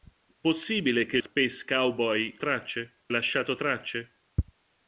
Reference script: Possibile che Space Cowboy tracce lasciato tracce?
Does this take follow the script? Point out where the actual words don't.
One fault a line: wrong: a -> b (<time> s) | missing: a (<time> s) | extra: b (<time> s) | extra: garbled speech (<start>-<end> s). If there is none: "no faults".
no faults